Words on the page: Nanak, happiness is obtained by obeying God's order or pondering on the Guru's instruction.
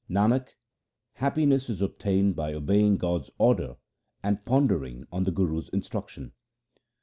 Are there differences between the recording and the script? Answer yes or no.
yes